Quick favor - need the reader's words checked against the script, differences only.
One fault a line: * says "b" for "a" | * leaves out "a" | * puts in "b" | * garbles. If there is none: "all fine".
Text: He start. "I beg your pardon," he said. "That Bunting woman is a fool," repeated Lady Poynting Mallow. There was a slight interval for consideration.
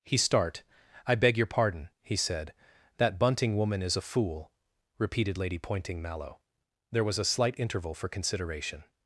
all fine